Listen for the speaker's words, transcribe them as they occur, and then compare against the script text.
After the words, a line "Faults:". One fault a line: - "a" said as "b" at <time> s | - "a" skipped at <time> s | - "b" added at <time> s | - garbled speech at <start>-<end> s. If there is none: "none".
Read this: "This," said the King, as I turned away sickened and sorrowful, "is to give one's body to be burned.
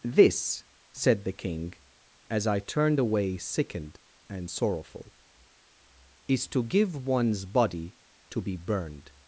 "This," said the King, as I turned away sickened and sorrowful, "is to give one's body to be burned.
Faults:
none